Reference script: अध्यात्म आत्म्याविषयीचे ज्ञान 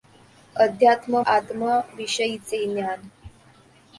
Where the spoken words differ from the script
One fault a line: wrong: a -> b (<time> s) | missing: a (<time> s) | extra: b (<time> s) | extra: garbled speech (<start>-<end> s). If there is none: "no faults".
no faults